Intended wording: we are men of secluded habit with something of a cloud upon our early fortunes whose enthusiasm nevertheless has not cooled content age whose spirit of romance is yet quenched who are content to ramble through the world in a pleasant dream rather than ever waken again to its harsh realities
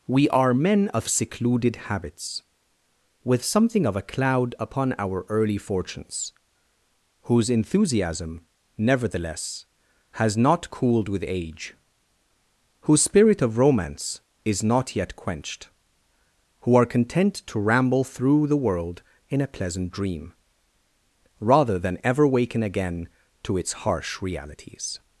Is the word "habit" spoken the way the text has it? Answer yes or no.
no